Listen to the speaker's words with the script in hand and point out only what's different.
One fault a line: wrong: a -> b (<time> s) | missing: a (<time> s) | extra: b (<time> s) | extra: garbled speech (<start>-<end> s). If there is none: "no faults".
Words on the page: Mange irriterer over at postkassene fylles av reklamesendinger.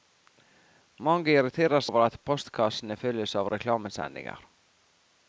no faults